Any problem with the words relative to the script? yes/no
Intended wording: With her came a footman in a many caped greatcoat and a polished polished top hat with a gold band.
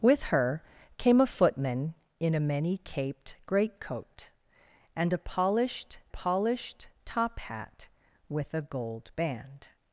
no